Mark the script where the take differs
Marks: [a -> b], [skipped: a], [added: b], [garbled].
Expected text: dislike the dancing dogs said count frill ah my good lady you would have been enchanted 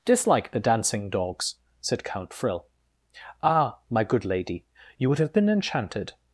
dislike the dancing dogs said count frill ah my good lady you would have been enchanted